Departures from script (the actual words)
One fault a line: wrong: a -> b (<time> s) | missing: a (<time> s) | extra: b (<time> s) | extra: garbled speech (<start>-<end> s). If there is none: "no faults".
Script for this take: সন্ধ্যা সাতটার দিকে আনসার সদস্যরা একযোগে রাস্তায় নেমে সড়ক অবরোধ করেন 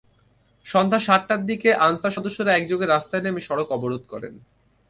no faults